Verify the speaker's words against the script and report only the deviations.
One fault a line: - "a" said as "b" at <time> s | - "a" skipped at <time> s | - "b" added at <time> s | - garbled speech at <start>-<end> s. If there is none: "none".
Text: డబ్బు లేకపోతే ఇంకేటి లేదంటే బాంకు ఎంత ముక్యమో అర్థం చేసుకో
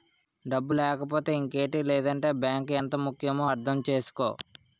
none